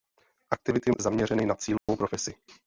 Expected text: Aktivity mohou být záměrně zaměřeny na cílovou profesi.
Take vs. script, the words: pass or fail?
fail